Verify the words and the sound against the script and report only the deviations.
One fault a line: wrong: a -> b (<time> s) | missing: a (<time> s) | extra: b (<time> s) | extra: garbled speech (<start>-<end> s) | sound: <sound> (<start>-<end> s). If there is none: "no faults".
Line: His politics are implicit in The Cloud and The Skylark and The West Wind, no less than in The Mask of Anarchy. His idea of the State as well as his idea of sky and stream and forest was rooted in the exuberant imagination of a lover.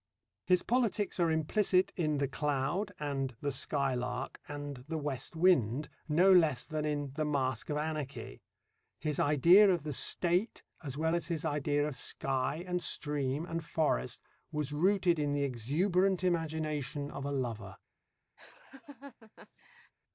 sound: laugh (18.4-19.9 s)